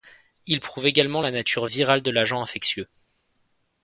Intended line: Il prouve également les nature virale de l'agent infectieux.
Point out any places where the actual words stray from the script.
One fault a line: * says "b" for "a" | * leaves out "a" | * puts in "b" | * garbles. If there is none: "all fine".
* says "la" for "les"